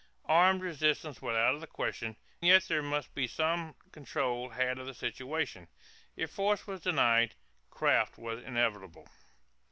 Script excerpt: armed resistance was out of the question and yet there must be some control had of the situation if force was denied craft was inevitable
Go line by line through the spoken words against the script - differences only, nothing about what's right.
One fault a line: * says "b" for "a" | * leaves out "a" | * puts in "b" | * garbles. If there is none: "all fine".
* leaves out "and"